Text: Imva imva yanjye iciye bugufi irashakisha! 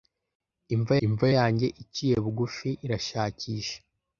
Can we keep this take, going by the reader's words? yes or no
yes